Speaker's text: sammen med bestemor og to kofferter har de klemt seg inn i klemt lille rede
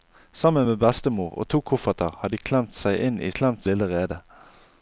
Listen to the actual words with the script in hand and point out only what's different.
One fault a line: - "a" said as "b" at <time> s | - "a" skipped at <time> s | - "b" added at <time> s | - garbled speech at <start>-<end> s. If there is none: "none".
none